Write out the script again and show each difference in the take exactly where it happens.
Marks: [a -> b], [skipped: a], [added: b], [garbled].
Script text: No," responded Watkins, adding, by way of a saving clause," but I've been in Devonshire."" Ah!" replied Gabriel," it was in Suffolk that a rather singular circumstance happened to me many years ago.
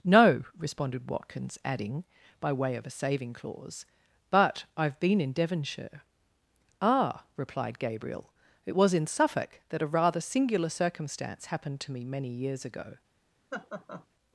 No," responded Watkins, adding, by way of a saving clause," but I've been in Devonshire."" Ah!" replied Gabriel," it was in Suffolk that a rather singular circumstance happened to me many years ago.